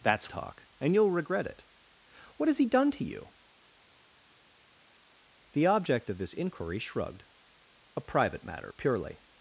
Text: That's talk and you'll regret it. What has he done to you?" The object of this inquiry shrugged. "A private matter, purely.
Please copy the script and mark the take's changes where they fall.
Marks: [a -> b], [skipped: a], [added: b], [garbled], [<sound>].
That's talk and you'll regret it. What has he done to you?" The object of this inquiry shrugged. "A private matter, purely.